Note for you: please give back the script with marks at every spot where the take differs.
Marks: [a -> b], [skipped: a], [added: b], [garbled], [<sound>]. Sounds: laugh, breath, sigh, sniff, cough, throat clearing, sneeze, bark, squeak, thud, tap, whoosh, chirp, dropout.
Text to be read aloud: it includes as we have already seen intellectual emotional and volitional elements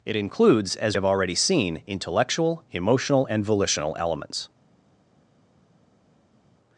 it includes as [skipped: we] have already seen intellectual emotional and volitional elements